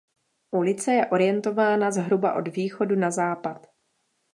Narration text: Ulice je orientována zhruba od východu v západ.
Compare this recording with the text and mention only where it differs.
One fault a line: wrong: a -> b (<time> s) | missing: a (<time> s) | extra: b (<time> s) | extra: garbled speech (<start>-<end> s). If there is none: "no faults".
wrong: v -> na (3.0 s)